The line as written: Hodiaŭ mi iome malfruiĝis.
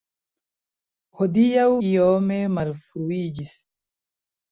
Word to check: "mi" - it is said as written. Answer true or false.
false